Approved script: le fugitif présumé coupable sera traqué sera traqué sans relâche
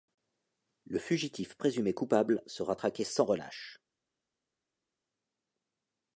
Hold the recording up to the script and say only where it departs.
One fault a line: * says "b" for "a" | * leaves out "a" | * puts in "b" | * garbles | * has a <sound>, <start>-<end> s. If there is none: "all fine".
* leaves out "sera traqué"